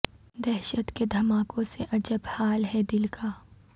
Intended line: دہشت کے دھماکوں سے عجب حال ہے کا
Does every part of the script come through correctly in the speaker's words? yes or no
no